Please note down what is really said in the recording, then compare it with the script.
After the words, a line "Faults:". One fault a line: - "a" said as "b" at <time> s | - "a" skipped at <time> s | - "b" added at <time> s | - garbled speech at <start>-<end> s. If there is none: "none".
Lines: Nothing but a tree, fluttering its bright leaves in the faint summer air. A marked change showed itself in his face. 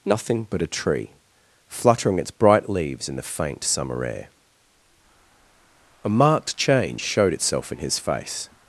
Nothing but a tree, fluttering its bright leaves in the faint summer air. A marked change showed itself in his face.
Faults:
none